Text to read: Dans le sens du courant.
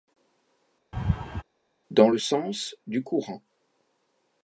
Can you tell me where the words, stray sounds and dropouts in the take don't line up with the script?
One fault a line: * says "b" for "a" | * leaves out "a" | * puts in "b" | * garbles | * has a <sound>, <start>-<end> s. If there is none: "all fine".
* has a laugh, 0.9-1.4 s